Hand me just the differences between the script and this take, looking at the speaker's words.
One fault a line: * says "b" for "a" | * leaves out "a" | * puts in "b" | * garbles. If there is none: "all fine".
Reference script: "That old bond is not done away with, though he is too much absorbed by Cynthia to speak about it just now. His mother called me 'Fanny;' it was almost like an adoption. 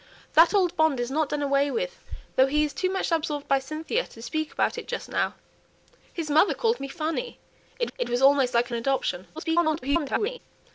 * puts in "it"
* garbles